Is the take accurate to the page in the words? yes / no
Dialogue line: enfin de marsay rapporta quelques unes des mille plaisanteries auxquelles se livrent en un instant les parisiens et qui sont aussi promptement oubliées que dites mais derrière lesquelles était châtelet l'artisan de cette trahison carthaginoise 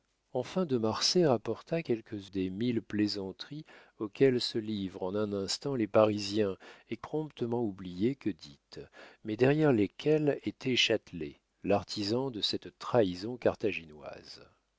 no